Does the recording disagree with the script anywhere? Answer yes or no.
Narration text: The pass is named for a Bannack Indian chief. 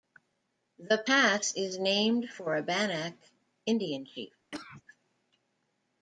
no